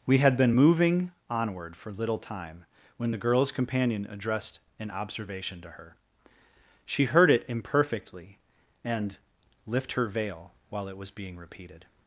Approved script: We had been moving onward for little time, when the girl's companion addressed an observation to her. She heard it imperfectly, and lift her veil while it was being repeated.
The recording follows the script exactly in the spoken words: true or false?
true